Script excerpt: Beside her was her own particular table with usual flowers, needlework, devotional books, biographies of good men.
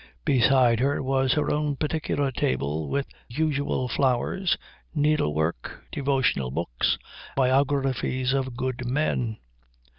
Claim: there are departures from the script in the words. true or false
false